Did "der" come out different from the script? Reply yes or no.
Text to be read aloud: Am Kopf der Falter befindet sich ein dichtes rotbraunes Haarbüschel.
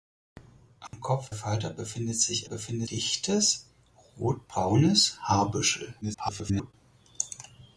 yes